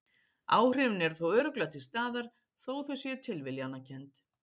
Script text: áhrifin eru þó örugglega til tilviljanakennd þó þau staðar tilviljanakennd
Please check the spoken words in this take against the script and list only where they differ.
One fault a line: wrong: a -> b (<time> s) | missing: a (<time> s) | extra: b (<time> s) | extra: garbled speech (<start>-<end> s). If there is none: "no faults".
wrong: tilviljanakennd -> staðar (1.9 s)
wrong: staðar -> séu (3.1 s)